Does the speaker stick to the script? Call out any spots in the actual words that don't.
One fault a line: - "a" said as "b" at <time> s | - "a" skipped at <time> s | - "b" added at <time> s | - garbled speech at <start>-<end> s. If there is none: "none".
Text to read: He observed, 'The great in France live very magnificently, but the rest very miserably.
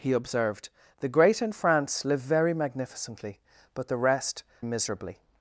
- "very" skipped at 4.4 s